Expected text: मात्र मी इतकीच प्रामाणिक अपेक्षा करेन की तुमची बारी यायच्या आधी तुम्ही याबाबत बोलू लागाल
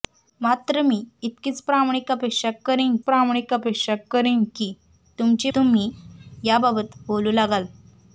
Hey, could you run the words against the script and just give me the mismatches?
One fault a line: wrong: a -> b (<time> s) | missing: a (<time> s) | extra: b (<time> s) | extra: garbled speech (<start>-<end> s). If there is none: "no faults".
wrong: की तुमची बारी यायच्या आधी -> प्रामाणिक अपेक्षा करेन की तुमची (3.0 s)